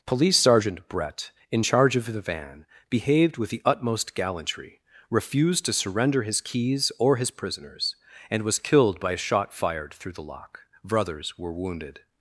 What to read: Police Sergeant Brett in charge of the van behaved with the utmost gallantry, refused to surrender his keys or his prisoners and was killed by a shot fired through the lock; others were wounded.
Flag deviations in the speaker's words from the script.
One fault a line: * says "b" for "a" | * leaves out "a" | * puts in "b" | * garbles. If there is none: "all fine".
* says "brothers" for "others"